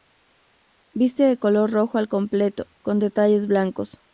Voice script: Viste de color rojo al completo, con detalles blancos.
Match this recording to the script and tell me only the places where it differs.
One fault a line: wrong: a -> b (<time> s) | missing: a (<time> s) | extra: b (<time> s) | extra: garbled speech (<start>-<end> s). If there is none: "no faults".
no faults